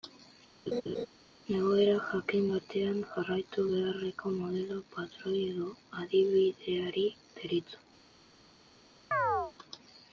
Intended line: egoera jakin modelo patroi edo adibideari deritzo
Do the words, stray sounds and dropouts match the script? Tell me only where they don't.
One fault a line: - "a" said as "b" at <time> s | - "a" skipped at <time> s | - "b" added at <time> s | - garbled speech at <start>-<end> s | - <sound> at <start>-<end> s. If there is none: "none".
- laugh at 0.7-1.1 s
- "batean jarraitu beharreko" added at 2.5 s
- chirp at 9.1-9.5 s